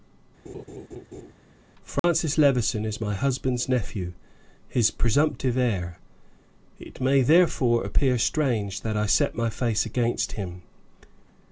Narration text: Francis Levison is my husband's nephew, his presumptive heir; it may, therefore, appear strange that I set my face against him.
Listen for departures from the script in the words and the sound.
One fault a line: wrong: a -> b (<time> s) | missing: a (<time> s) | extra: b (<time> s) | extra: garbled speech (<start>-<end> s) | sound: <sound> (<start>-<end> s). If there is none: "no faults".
sound: laugh (0.5-1.3 s)
sound: dropout (2.0-2.0 s)